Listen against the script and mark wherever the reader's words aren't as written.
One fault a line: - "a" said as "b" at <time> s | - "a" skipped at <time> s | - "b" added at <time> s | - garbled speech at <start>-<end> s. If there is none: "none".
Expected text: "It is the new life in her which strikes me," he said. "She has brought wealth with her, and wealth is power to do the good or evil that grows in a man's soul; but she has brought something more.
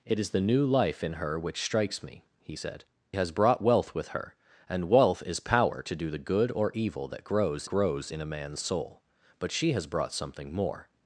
- "She" skipped at 2.8 s
- "grows" added at 7.7 s